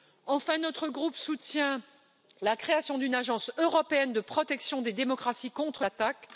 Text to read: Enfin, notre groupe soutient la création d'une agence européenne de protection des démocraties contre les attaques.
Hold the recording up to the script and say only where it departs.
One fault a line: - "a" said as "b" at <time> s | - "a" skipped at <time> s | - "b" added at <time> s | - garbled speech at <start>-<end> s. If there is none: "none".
- "les" skipped at 5.8 s